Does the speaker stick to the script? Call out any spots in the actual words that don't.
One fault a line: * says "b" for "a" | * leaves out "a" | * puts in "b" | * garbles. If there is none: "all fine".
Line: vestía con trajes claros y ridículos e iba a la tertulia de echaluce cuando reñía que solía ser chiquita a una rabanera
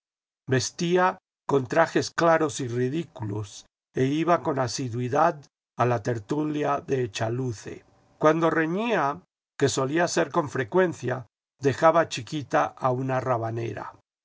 * puts in "con asiduidad"
* puts in "con frecuencia dejaba"